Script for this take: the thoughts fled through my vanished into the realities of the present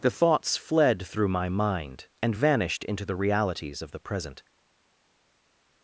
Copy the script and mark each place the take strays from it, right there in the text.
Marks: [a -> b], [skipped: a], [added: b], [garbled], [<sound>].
the thoughts fled through my [added: mind and] vanished into the realities of the present